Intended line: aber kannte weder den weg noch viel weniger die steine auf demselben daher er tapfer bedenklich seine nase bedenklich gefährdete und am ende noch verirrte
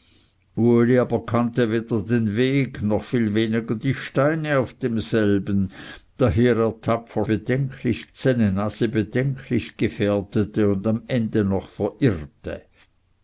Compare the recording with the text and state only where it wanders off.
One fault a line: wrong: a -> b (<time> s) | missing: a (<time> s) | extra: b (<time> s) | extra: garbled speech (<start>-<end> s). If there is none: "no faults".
no faults